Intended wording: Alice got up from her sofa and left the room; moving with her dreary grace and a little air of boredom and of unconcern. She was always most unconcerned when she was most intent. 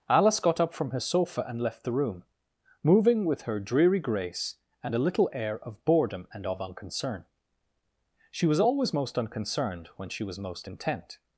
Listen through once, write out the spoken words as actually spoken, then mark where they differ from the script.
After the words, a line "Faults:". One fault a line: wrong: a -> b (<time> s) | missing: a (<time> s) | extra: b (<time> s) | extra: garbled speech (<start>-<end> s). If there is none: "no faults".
Alice got up from her sofa and left the room; moving with her dreary grace and a little air of boredom and of unconcern. She was always most unconcerned when she was most intent.
Faults:
no faults